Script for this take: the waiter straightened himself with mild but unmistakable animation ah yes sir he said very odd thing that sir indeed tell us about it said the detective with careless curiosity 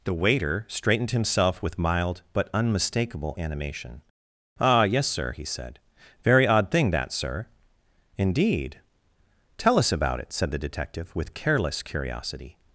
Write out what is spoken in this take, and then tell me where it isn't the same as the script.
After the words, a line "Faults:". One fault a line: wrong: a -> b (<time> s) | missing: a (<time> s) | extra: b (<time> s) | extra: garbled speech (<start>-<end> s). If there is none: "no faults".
the waiter straightened himself with mild but unmistakable animation ah yes sir he said very odd thing that sir indeed tell us about it said the detective with careless curiosity
Faults:
no faults